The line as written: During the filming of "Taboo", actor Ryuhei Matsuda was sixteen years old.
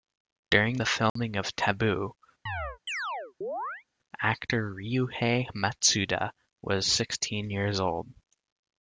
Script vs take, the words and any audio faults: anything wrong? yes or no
yes